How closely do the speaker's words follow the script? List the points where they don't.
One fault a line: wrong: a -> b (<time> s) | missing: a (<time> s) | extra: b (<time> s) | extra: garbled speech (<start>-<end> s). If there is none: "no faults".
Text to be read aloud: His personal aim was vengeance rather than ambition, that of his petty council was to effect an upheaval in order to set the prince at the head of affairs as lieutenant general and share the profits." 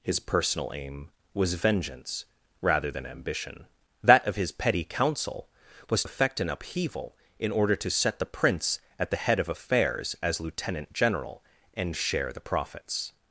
missing: to (6.0 s)